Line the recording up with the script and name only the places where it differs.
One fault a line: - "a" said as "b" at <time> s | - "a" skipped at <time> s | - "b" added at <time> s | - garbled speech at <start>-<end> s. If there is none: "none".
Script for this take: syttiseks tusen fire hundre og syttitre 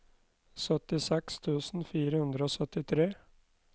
none